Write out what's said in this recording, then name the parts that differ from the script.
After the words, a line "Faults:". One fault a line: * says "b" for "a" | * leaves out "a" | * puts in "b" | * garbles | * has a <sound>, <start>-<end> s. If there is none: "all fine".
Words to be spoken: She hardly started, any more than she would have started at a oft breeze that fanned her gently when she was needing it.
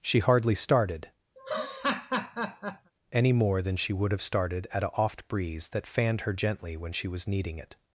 She hardly started, any more than she would have started at a oft breeze that fanned her gently when she was needing it.
Faults:
* has a laugh, 1.4-2.9 s